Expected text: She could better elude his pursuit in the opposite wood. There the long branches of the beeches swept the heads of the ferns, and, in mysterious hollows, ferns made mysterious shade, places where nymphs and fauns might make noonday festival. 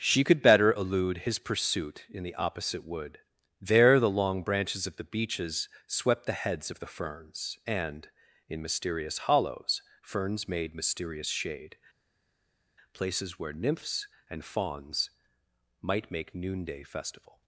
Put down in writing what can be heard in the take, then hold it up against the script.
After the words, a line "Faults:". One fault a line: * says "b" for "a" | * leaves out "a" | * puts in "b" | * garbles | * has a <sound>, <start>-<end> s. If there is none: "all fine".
She could better elude his pursuit in the opposite wood. There the long branches of the beeches swept the heads of the ferns, and, in mysterious hollows, ferns made mysterious shade, places where nymphs and fauns might make noonday festival.
Faults:
all fine